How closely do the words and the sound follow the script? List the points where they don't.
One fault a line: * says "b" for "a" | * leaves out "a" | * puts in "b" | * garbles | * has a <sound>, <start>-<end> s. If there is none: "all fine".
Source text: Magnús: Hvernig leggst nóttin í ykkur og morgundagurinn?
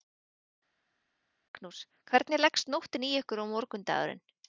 all fine